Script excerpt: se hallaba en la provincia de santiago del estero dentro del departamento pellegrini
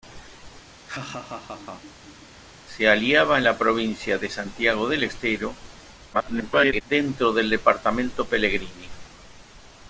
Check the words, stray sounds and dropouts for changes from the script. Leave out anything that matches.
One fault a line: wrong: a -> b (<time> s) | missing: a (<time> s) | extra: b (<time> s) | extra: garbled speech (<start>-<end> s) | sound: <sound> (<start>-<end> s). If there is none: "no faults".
sound: laugh (0.8-2.3 s)
extra: garbled speech (6.1-6.8 s)